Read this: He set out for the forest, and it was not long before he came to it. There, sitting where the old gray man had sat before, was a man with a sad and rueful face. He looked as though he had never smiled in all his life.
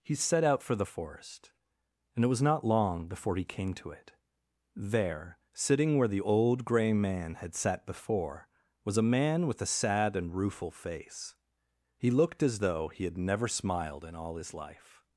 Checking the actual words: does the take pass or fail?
pass